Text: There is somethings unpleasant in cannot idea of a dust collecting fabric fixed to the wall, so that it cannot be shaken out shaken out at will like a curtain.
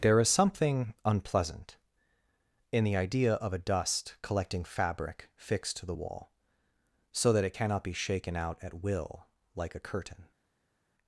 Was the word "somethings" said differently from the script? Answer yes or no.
yes